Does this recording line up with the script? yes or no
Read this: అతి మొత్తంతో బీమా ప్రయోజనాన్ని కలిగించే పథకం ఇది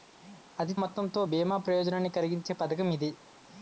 yes